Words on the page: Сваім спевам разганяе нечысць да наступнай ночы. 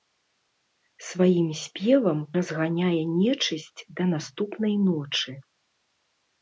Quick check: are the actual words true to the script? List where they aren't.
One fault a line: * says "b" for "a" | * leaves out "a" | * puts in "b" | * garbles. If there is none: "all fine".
all fine